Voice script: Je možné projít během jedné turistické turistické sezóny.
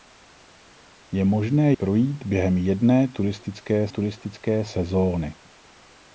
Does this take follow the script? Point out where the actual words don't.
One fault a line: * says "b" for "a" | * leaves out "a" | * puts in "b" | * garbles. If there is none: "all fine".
all fine